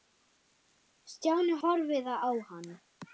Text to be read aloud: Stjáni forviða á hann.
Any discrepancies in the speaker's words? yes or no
no